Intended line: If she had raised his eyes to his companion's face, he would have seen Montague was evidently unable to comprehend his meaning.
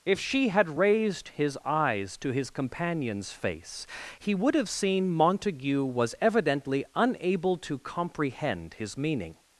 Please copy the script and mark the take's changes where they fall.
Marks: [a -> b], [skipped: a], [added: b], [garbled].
If she had raised his eyes to his companion's face, he would have seen Montague was evidently unable to comprehend his meaning.